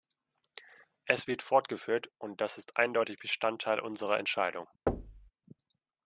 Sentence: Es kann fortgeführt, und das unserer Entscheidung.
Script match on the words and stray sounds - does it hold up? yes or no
no